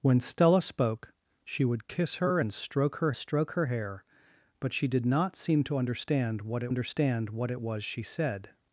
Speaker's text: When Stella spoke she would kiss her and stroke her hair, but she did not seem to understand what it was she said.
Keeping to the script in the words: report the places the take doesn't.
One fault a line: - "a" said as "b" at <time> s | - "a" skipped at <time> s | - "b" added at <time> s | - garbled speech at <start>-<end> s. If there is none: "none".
- "stroke her" added at 3.1 s
- "understand what it" added at 6.7 s